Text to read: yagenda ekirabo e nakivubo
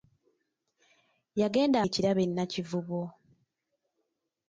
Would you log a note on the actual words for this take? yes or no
no